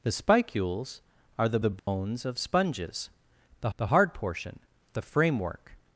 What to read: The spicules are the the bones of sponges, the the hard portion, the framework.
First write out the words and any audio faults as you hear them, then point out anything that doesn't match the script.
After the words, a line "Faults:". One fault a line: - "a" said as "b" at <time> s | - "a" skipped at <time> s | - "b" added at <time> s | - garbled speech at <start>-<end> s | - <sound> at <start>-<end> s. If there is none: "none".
The spicules are the the bones of sponges, the the hard portion, the framework.
Faults:
- dropout at 1.8-1.9 s